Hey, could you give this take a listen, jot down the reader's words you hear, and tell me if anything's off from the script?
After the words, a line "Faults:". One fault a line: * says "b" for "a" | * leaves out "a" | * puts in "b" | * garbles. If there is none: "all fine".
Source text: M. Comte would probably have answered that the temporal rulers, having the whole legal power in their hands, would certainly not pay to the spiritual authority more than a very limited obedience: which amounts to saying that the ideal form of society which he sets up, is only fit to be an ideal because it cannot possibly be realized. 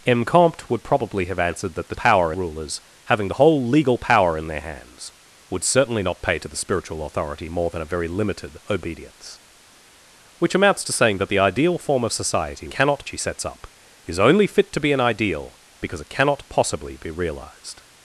M. Comte would probably have answered that the power rulers, having the whole legal power in their hands, would certainly not pay to the spiritual authority more than a very limited obedience: which amounts to saying that the ideal form of society cannot he sets up, is only fit to be an ideal because it cannot possibly be realized.
Faults:
* says "power" for "temporal"
* says "cannot" for "which"